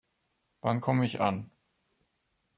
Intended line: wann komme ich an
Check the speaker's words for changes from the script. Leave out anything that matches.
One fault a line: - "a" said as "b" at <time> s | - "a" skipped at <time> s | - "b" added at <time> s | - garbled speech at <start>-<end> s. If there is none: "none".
none